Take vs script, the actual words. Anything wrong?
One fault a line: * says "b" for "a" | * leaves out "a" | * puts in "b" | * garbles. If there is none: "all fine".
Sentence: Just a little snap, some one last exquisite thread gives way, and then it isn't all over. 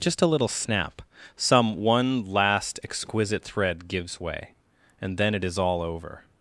* says "is" for "isn't"